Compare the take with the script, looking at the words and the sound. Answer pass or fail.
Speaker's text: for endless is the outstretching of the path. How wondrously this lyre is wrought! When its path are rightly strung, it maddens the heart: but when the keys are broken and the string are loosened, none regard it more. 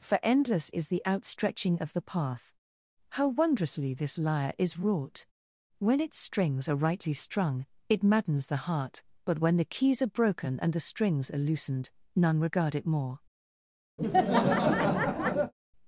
fail